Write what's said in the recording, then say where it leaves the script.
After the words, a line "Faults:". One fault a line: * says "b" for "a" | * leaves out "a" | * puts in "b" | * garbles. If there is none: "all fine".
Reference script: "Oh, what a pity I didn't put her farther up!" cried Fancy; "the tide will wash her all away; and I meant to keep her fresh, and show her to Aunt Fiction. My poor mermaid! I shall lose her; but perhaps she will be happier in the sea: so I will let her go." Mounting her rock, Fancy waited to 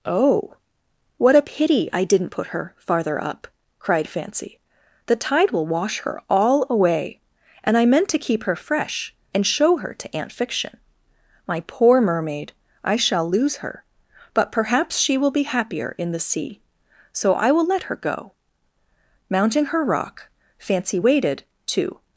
"Oh, what a pity I didn't put her farther up!" cried Fancy; "the tide will wash her all away; and I meant to keep her fresh, and show her to Aunt Fiction. My poor mermaid! I shall lose her; but perhaps she will be happier in the sea: so I will let her go." Mounting her rock, Fancy waited to
Faults:
all fine